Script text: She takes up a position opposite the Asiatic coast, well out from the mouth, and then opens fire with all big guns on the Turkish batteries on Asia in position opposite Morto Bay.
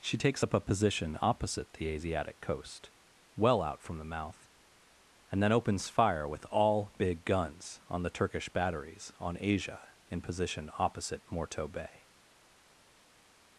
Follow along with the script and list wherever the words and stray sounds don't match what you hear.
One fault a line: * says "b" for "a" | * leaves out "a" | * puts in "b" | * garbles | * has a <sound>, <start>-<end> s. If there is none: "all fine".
all fine